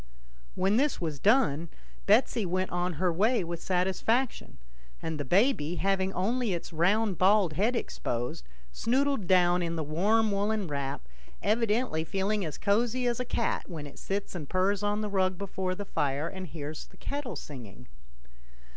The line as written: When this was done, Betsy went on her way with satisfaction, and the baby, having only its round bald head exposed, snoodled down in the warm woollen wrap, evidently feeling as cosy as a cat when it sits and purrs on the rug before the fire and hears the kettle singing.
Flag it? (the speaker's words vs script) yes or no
no